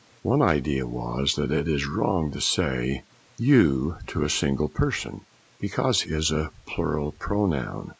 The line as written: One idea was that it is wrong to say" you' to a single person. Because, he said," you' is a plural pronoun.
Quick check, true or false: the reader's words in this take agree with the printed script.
false